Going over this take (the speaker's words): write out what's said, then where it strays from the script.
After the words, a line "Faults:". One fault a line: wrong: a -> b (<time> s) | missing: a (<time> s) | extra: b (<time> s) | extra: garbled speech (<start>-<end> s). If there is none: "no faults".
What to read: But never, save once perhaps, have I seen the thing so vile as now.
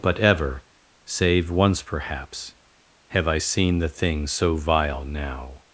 But ever, save once perhaps, have I seen the thing so vile now.
Faults:
wrong: never -> ever (0.2 s)
missing: as (5.0 s)